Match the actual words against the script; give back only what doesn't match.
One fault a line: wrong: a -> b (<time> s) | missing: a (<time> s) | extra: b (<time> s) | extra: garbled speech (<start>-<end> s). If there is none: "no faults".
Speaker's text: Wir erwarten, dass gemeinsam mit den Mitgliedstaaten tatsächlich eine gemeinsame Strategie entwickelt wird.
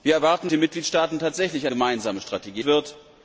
missing: dass gemeinsam mit (0.5 s)
missing: eine (1.7 s)
missing: entwickelt (2.6 s)